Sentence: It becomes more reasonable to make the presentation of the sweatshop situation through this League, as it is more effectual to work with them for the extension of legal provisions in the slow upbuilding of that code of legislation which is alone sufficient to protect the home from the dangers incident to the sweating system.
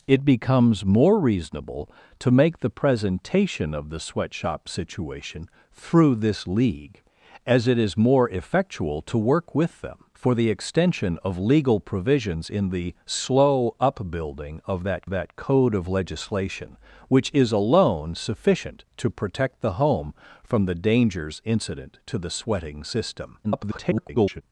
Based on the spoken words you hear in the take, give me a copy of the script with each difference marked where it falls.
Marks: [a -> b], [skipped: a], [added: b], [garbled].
It becomes more reasonable to make the presentation of the sweatshop situation through this League, as it is more effectual to work with them for the extension of legal provisions in the slow upbuilding of that [added: that] code of legislation which is alone sufficient to protect the home from the dangers incident to the sweating system. [garbled]